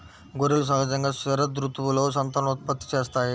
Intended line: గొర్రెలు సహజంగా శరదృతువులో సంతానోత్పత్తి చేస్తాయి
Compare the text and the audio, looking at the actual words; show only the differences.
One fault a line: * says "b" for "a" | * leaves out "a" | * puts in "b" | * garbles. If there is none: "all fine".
all fine